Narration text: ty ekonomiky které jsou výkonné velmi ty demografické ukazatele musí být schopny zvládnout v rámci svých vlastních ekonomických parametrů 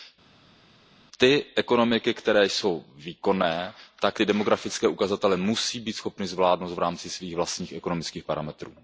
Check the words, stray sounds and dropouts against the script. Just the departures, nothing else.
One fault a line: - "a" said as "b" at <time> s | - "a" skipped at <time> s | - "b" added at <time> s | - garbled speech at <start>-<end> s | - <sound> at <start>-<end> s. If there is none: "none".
- "velmi" said as "tak" at 4.0 s